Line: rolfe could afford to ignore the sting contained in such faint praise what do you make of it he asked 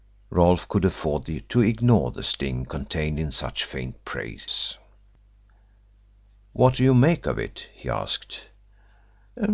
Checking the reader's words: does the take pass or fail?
pass